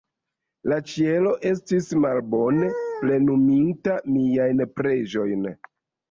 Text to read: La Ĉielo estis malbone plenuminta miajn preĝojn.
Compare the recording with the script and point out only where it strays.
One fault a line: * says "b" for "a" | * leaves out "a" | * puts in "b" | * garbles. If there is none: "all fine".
all fine